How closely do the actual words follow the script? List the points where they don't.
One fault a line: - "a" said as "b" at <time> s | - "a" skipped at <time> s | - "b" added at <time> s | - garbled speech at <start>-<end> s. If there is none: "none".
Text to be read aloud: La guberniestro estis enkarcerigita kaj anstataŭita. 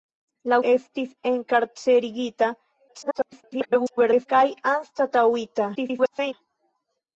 - "guberniestro" skipped at 0.6 s
- garbled speech at 2.9-4.3 s
- garbled speech at 5.7-6.3 s